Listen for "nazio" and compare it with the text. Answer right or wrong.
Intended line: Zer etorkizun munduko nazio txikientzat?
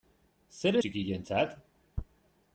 wrong